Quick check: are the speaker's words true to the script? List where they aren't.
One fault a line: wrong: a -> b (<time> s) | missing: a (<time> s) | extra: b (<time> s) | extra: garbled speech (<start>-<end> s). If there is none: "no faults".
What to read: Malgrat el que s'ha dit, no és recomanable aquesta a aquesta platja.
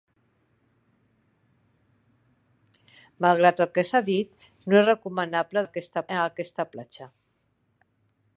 no faults